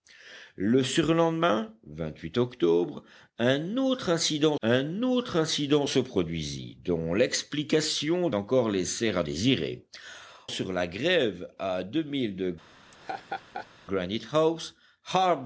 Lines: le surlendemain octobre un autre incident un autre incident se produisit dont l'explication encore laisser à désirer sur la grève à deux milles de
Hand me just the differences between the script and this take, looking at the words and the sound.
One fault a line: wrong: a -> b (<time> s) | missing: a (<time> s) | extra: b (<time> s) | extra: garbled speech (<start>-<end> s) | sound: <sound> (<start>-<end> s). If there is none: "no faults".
sound: laugh (12.9-13.7 s)